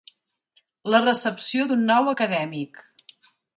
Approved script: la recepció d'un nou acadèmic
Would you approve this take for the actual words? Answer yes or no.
yes